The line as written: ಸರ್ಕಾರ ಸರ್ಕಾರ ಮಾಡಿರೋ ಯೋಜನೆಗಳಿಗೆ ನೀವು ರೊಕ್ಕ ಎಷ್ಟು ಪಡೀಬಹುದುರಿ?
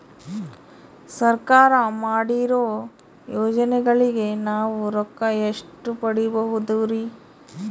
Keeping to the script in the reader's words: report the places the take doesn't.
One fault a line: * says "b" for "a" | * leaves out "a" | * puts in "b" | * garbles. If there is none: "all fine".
* leaves out "ಸರ್ಕಾರ"
* says "ನಾವು" for "ನೀವು"